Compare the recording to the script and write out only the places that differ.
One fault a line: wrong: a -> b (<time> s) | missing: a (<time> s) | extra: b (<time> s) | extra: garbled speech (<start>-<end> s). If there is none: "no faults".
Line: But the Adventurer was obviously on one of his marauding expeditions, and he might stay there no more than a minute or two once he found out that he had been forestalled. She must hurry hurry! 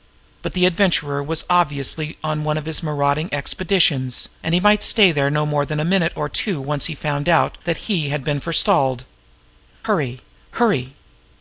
missing: She must (9.1 s)